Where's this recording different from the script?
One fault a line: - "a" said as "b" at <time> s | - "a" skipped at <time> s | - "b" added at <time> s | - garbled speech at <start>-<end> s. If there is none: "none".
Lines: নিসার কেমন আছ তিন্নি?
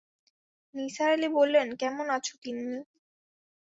- "আলি বললেন" added at 1.1 s